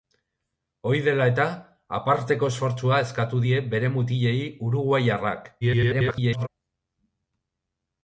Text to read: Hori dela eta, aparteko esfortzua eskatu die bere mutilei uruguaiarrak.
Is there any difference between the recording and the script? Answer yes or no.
yes